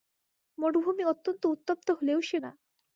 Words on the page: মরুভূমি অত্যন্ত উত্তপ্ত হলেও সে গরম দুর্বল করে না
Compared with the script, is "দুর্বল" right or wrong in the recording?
wrong